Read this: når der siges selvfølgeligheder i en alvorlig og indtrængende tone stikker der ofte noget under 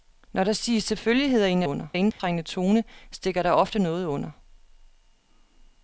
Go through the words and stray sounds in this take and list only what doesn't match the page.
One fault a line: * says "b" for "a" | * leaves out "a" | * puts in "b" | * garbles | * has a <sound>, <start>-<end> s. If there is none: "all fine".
* says "under" for "alvorlig"
* has a dropout, 2.1-2.2 s